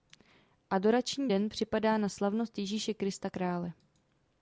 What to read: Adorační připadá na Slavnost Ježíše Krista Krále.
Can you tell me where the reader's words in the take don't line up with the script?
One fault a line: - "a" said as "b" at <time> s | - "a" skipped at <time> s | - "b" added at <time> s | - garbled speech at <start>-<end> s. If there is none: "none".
- "den" added at 1.3 s